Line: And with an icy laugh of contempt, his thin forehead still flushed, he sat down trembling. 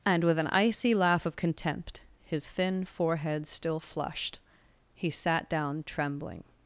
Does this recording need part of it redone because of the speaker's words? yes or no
no